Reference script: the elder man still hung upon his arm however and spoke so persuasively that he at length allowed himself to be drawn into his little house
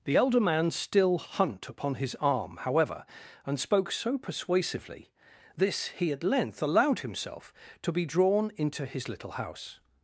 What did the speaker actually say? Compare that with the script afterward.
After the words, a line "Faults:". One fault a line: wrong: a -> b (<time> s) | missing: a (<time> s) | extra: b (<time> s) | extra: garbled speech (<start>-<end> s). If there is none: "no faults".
the elder man still hunt upon his arm however and spoke so persuasively this he at length allowed himself to be drawn into his little house
Faults:
wrong: hung -> hunt (1.2 s)
wrong: that -> this (5.6 s)